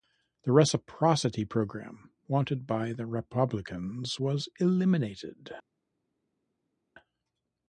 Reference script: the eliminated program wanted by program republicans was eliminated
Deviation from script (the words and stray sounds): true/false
true